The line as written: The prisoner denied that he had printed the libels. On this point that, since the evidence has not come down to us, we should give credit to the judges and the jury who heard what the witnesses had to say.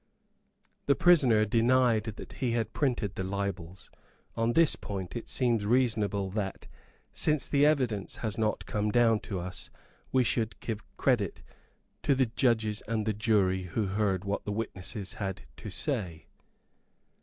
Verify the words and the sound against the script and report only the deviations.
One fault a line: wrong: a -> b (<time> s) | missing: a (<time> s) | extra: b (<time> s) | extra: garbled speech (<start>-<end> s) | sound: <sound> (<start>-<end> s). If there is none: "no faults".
extra: it seems reasonable (5.2 s)